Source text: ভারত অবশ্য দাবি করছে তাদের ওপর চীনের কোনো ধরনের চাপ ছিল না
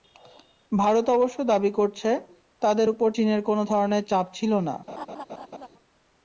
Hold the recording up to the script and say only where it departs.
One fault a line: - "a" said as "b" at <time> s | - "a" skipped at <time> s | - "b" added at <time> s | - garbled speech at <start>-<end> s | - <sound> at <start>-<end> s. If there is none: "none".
- laugh at 4.9-5.7 s